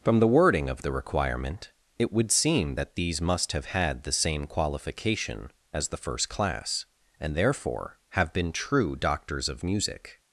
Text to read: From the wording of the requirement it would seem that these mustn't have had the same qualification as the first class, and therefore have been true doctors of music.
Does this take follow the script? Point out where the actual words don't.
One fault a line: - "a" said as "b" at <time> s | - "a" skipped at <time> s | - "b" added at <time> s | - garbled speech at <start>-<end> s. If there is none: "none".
- "mustn't" said as "must" at 3.2 s